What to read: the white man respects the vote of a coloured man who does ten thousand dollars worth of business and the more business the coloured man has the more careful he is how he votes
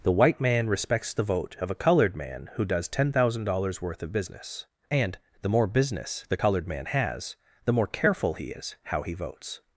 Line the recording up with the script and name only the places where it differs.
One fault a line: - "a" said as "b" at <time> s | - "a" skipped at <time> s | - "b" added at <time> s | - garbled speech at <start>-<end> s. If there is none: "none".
none